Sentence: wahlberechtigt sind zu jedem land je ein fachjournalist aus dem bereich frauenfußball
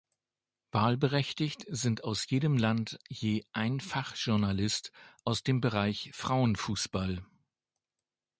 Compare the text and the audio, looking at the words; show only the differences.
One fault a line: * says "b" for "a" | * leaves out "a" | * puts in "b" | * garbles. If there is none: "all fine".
* says "aus" for "zu"